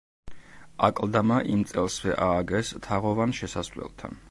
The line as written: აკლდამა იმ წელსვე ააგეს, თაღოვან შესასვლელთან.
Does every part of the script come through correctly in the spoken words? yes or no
yes